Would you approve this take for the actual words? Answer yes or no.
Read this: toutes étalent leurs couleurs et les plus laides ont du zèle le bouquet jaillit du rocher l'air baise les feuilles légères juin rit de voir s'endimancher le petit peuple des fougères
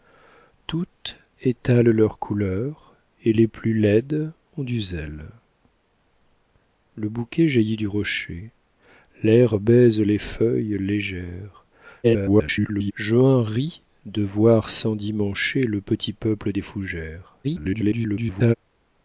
no